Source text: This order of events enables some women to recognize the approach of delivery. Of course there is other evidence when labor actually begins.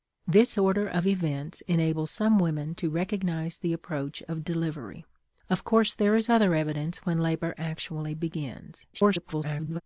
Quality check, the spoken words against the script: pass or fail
fail